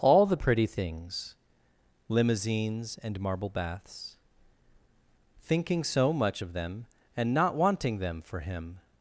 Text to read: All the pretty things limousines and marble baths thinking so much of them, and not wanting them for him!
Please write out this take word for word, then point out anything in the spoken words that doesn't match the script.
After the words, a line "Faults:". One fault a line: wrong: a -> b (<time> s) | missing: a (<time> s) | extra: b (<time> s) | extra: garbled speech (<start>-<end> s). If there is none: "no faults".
All the pretty things limousines and marble baths thinking so much of them, and not wanting them for him!
Faults:
no faults